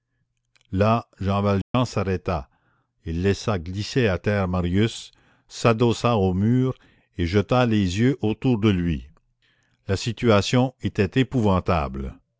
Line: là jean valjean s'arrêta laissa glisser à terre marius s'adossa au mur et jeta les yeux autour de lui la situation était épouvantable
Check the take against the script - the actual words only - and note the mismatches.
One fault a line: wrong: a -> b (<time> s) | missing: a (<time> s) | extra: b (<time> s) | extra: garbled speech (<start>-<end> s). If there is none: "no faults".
extra: il (3.0 s)